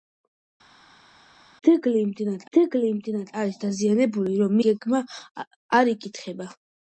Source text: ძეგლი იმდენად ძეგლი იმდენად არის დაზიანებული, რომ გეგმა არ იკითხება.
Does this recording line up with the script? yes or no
yes